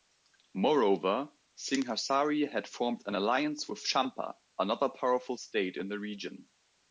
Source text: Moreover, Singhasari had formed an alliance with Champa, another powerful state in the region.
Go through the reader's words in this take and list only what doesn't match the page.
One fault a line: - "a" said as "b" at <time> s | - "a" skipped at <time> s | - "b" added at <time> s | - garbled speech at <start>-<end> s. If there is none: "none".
none